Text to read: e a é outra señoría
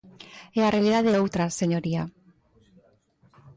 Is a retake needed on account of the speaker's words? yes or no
yes